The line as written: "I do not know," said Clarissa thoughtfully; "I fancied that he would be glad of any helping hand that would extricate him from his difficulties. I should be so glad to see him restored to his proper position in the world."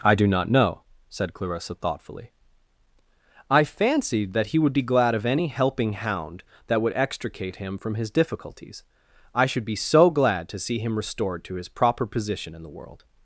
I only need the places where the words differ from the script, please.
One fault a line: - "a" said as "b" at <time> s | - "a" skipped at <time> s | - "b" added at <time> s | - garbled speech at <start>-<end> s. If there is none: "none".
- "hand" said as "hound" at 5.9 s